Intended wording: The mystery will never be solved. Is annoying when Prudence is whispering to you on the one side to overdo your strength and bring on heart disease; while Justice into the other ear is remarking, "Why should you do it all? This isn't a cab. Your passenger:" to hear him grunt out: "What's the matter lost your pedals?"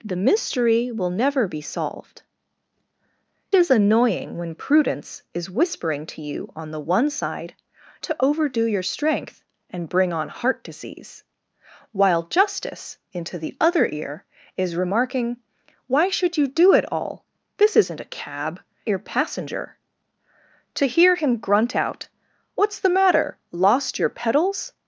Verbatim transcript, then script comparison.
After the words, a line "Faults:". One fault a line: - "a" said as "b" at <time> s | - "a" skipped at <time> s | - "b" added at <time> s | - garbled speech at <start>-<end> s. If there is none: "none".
The mystery will never be solved. Is annoying when Prudence is whispering to you on the one side to overdo your strength and bring on heart disease; while Justice into the other ear is remarking, "Why should you do it all? This isn't a cab. Your passenger:" to hear him grunt out: "What's the matter lost your pedals?"
Faults:
none